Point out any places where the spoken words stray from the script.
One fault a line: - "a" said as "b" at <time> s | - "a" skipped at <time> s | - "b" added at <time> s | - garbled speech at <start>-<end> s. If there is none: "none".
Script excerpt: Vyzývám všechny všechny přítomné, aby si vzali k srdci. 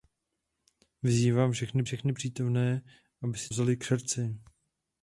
none